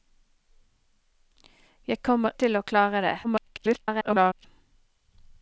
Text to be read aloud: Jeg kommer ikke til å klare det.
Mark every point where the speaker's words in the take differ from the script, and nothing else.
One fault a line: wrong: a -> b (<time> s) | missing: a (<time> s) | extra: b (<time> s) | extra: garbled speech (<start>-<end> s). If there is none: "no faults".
missing: ikke (2.4 s)
extra: garbled speech (3.2-4.5 s)